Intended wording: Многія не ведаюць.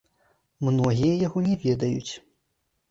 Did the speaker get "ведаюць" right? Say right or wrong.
right